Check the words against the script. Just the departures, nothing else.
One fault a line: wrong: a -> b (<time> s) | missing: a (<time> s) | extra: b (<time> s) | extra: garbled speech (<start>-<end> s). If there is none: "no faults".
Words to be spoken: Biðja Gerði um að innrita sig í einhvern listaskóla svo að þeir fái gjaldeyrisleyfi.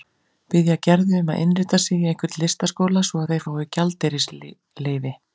no faults